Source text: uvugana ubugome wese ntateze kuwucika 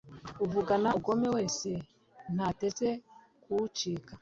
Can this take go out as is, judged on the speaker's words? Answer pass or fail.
pass